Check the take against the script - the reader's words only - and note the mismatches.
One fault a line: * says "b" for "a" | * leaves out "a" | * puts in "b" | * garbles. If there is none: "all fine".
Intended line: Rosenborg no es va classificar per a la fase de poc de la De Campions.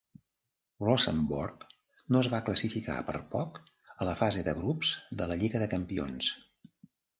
* puts in "poc"
* says "grups" for "poc"
* puts in "Lliga"